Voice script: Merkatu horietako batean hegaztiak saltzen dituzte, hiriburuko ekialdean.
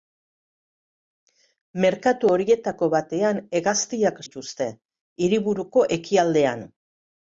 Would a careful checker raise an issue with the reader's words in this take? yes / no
yes